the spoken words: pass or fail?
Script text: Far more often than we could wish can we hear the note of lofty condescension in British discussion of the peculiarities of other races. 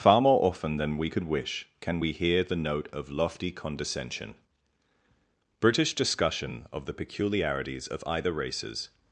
fail